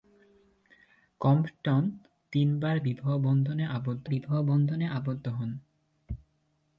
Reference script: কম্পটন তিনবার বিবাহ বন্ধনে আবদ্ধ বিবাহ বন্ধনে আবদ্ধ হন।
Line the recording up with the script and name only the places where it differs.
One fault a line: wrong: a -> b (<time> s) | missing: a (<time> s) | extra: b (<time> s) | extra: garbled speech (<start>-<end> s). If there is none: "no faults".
no faults